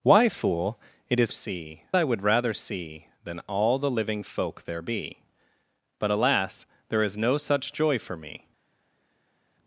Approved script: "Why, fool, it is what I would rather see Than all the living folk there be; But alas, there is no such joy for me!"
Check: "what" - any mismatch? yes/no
yes